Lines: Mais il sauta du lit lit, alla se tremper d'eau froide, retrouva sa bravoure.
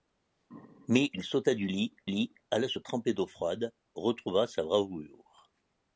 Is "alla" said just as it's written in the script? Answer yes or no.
yes